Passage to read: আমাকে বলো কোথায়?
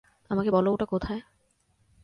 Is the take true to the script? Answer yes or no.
no